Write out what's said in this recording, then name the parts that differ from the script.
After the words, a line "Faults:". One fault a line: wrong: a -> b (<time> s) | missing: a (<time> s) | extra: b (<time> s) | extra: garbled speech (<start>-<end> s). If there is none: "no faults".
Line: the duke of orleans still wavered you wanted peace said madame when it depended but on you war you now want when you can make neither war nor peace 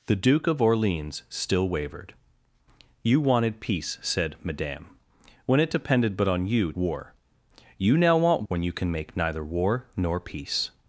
the duke of orleans still wavered you wanted peace said madame when it depended but on you war you now want when you can make neither war nor peace
Faults:
no faults